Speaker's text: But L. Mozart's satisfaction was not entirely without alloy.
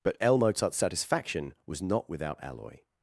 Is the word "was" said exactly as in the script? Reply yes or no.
yes